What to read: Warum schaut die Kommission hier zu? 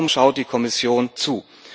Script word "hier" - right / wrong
wrong